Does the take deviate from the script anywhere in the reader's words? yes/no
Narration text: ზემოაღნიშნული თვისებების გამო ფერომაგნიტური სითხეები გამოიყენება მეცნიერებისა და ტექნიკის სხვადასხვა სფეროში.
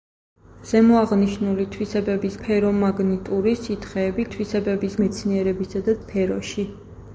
yes